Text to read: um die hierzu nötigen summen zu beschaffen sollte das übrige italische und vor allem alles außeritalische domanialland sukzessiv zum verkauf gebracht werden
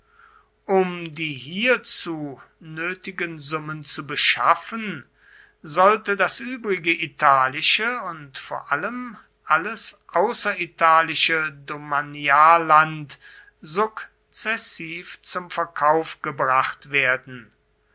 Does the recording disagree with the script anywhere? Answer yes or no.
no